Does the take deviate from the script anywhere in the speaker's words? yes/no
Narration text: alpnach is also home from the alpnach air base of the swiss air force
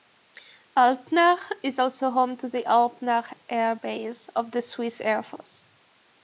yes